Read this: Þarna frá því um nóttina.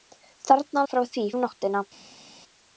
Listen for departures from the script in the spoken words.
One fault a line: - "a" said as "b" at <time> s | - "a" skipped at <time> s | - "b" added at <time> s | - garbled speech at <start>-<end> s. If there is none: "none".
none